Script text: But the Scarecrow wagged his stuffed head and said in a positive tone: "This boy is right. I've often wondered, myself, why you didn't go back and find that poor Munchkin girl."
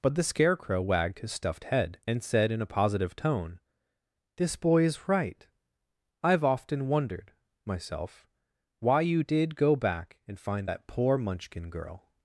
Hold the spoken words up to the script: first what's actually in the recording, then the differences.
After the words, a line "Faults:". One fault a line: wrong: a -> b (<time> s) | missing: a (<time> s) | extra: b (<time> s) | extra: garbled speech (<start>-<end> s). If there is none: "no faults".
But the Scarecrow wagged his stuffed head and said in a positive tone: "This boy is right. I've often wondered, myself, why you did go back and find that poor Munchkin girl."
Faults:
wrong: didn't -> did (9.2 s)